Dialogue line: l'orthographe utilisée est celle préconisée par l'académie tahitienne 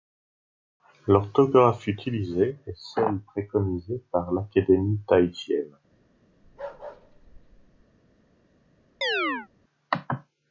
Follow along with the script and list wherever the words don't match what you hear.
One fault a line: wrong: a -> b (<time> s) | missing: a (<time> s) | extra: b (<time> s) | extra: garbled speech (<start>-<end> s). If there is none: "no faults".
no faults